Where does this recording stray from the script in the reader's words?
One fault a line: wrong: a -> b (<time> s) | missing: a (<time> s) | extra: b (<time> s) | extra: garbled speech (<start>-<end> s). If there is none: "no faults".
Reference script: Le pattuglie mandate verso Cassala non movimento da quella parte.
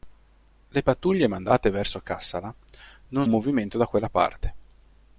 no faults